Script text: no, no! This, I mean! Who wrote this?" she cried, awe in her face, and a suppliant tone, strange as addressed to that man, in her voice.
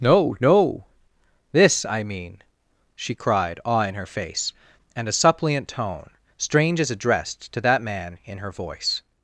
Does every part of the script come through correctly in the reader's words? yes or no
no